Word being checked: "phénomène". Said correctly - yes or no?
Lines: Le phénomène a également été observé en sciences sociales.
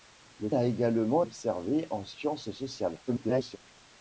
no